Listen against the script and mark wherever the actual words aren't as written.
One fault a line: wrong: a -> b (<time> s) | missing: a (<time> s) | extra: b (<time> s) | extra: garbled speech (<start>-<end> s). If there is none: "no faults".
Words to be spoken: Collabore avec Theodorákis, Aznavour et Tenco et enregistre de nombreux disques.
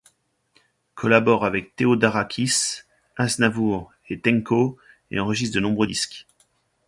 no faults